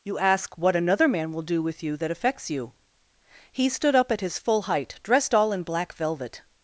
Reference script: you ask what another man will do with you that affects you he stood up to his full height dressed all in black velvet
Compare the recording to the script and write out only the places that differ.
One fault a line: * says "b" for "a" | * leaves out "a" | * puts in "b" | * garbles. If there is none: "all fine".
* says "at" for "to"